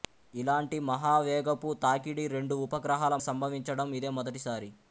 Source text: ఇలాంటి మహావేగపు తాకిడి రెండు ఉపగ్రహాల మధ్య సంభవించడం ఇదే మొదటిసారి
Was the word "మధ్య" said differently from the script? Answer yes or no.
yes